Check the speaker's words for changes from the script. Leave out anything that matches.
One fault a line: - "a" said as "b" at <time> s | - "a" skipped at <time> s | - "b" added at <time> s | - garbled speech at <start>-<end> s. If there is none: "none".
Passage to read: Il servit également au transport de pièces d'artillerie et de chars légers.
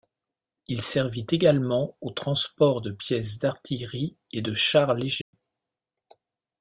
none